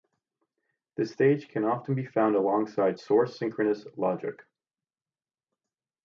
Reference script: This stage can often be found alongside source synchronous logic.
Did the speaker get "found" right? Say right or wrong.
right